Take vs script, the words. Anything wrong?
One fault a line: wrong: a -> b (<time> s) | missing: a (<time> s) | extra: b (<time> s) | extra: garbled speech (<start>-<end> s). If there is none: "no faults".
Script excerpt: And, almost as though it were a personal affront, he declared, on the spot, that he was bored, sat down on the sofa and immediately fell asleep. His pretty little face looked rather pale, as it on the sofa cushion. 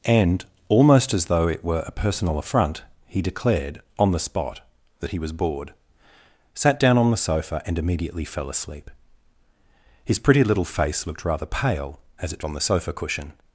no faults